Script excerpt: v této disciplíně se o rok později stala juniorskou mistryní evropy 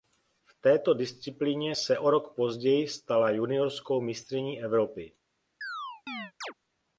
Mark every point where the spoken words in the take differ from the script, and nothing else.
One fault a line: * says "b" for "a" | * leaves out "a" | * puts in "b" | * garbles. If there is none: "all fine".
all fine